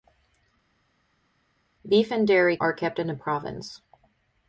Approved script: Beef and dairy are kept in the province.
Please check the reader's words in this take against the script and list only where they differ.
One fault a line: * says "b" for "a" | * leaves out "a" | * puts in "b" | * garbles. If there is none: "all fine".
all fine